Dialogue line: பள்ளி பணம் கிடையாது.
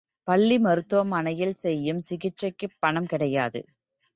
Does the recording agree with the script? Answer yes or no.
no